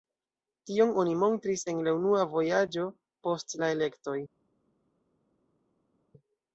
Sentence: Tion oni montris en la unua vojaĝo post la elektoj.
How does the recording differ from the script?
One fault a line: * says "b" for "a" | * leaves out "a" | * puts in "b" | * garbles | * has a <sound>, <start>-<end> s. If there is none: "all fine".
all fine